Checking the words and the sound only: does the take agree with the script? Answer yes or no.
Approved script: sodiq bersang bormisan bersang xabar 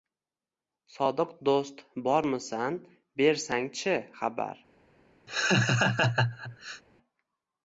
no